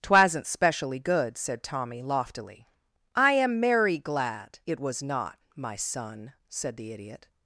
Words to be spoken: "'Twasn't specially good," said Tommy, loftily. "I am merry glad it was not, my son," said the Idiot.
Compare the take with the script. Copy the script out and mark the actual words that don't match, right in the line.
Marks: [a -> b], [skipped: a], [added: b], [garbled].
"'Twasn't specially good," said Tommy, loftily. "I am merry glad it was not, my son," said the Idiot.